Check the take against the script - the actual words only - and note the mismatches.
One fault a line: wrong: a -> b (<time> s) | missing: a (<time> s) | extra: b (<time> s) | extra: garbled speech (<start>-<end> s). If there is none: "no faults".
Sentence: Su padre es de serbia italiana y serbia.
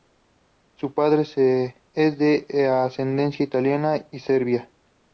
wrong: serbia -> ascendencia (2.7 s)